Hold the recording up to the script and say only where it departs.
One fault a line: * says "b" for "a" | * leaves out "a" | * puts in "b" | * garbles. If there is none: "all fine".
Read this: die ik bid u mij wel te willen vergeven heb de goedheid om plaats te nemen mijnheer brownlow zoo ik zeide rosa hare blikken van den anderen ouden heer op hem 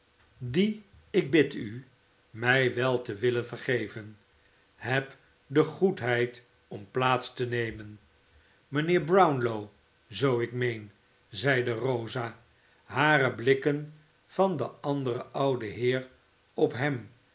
* puts in "meen"